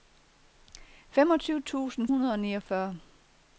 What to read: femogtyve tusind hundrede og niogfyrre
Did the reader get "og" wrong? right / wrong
right